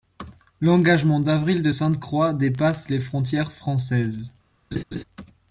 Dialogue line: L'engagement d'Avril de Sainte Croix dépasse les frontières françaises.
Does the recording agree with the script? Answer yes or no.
yes